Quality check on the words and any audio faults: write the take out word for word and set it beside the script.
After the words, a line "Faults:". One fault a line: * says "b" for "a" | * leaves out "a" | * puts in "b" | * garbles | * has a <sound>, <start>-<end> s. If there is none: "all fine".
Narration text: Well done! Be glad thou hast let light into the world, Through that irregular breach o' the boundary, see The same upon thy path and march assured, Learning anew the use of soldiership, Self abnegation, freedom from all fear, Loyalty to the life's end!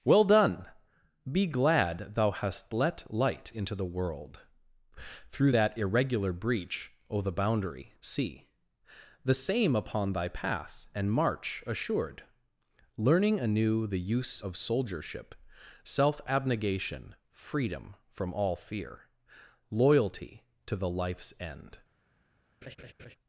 Well done! Be glad thou hast let light into the world, Through that irregular breach o' the boundary, see The same upon thy path and march assured, Learning anew the use of soldiership, Self abnegation, freedom from all fear, Loyalty to the life's end!
Faults:
* has a laugh, 22.6-23.2 s